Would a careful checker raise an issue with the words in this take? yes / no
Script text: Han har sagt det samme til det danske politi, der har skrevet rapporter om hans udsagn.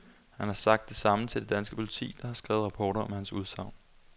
no